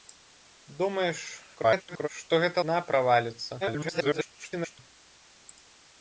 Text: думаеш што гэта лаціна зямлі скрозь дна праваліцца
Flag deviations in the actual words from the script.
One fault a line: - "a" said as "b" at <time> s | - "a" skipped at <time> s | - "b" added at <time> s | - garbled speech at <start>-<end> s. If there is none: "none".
- garbled speech at 1.5-2.1 s
- "лаціна зямлі скрозь" skipped at 2.6 s
- garbled speech at 3.6-4.8 s